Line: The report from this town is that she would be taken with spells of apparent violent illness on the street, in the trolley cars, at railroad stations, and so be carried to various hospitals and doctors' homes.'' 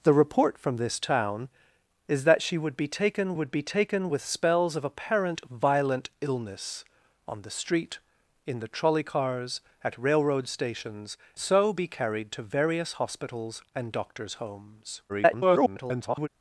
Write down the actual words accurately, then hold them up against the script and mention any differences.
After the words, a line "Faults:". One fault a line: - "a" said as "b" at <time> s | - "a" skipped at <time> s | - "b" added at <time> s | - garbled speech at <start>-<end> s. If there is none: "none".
The report from this town is that she would be taken would be taken with spells of apparent violent illness on the street, in the trolley cars, at railroad stations, so be carried to various hospitals and doctors' homes.'' [garbled]
Faults:
- "would be taken" added at 3.3 s
- "and" skipped at 11.2 s
- garbled speech at 15.1-16.3 s